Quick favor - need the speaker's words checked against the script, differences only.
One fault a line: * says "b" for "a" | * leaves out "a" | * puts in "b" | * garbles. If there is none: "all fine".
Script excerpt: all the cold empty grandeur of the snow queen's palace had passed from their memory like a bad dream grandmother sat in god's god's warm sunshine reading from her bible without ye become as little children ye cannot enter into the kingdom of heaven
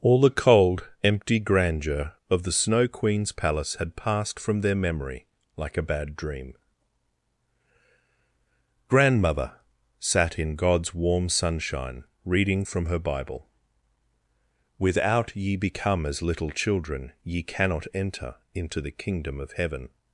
* leaves out "god's"